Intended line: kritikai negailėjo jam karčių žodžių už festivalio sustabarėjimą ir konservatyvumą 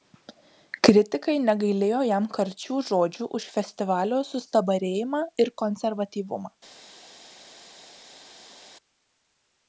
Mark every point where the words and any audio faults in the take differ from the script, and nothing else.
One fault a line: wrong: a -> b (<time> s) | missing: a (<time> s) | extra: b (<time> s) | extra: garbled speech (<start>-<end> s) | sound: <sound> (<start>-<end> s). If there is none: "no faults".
no faults